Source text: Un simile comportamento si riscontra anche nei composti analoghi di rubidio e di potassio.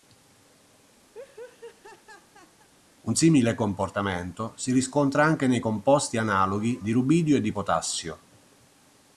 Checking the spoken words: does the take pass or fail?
pass